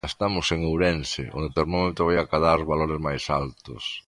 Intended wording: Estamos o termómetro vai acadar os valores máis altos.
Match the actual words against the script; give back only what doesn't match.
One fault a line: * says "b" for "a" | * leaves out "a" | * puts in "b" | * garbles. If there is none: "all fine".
* puts in "en Ourense onde"